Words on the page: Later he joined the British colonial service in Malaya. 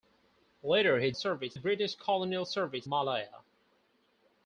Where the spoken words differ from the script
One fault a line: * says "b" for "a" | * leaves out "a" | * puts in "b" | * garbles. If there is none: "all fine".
* says "service" for "joined"
* leaves out "in"